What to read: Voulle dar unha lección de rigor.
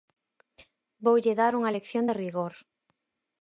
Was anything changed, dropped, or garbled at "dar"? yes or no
no